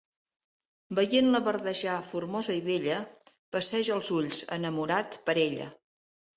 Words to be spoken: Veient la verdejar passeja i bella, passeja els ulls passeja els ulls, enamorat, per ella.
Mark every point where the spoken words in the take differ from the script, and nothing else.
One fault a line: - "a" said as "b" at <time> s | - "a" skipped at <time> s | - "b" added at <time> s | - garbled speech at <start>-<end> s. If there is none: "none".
- "passeja" said as "formosa" at 2.1 s
- "passeja els ulls" skipped at 4.4 s